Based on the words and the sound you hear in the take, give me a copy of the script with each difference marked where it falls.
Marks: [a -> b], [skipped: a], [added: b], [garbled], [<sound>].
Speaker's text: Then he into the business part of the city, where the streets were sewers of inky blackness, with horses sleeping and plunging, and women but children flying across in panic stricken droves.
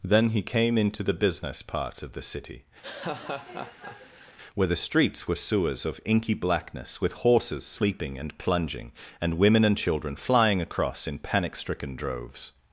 Then he [added: came] into the business part of the city, [laugh] where the streets were sewers of inky blackness, with horses sleeping and plunging, and women [but -> and] children flying across in panic stricken droves.